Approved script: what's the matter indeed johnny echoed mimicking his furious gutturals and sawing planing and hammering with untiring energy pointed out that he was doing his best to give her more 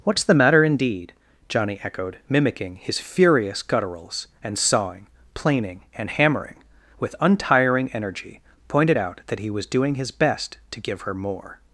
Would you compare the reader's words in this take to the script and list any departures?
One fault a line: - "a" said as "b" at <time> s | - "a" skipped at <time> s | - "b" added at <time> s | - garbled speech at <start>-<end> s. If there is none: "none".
none